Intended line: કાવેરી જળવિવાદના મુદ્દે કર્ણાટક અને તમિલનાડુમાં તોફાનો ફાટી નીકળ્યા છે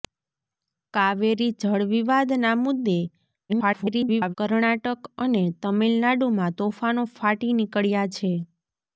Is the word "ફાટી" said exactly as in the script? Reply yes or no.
yes